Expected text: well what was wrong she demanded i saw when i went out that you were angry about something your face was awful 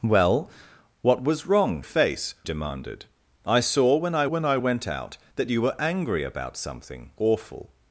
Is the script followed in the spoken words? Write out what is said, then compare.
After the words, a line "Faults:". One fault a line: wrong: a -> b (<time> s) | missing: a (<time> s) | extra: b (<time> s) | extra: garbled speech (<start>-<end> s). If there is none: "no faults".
well what was wrong face demanded i saw when i when i went out that you were angry about something awful
Faults:
wrong: she -> face (1.8 s)
extra: when i (4.2 s)
missing: your face was (7.1 s)